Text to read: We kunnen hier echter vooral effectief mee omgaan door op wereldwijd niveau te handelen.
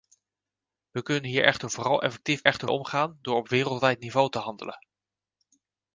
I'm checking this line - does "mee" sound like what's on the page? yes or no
no